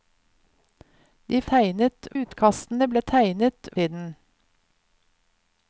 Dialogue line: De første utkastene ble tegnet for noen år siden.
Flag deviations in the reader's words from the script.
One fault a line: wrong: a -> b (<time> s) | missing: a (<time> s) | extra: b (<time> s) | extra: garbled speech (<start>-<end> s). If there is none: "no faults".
wrong: første -> tegnet (1.5 s)
missing: for noen år (3.7 s)